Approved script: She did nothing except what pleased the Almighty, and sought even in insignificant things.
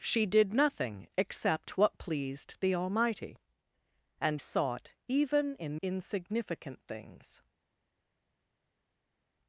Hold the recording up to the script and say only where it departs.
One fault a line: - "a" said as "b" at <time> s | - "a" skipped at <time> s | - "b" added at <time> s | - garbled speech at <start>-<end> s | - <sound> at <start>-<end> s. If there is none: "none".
none